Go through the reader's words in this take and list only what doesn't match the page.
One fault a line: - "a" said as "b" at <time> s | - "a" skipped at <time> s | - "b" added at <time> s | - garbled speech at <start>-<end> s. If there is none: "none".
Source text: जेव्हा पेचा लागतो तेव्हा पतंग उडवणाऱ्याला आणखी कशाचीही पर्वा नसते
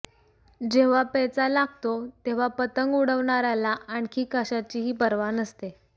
none